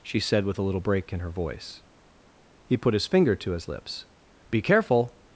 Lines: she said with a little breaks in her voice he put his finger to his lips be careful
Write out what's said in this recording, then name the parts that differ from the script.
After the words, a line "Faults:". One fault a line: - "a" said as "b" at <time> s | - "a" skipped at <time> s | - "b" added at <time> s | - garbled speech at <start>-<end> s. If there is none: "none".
she said with a little break in her voice he put his finger to his lips be careful
Faults:
- "breaks" said as "break" at 0.8 s